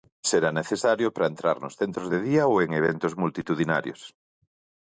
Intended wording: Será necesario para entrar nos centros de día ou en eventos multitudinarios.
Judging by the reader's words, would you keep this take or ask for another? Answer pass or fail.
pass